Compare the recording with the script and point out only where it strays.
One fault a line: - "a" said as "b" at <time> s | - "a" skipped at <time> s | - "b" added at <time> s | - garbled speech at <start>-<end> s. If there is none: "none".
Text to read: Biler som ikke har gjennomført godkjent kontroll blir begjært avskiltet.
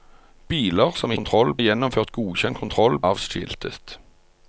- "ikke" said as "kontroll" at 1.2 s
- "blir begjært" skipped at 3.0 s